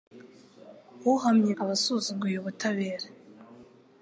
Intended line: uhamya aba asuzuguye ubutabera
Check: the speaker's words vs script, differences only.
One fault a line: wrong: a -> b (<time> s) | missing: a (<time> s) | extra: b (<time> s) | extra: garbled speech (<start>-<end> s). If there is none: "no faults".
no faults